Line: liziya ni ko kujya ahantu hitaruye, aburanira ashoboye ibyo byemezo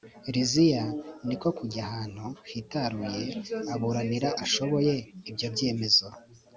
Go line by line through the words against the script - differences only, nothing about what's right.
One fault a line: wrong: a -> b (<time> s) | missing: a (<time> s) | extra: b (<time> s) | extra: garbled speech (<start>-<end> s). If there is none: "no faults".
no faults